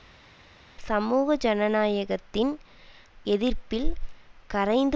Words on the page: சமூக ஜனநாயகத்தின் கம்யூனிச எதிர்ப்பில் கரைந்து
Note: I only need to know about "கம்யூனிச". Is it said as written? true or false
false